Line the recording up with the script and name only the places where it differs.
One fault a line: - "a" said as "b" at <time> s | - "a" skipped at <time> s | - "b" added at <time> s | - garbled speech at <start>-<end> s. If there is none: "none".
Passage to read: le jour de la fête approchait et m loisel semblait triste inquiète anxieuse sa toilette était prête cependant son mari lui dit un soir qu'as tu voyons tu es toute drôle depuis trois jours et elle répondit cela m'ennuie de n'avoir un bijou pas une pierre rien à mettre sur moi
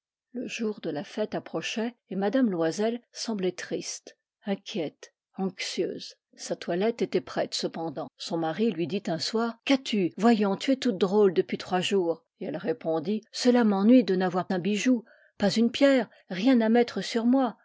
none